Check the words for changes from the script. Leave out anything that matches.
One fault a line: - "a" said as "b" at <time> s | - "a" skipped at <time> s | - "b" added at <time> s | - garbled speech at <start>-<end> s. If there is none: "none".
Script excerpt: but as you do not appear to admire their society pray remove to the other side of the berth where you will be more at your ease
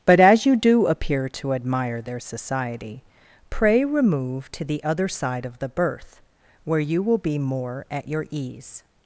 - "not" skipped at 0.9 s